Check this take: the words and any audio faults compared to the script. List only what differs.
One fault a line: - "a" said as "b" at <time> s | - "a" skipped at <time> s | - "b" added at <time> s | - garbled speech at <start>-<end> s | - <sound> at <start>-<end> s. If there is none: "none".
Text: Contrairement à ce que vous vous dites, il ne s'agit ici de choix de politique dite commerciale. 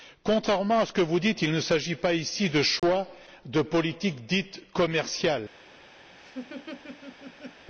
- "vous" skipped at 1.2 s
- "pas" added at 1.9 s
- dropout at 2.8-2.8 s
- laugh at 6.1-7.7 s